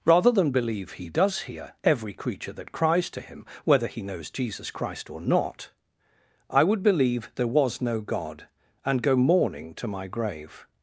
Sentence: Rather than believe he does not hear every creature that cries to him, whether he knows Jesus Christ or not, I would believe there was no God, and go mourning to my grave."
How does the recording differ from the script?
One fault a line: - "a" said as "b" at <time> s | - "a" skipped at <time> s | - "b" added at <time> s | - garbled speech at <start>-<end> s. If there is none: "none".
- "not" skipped at 1.4 s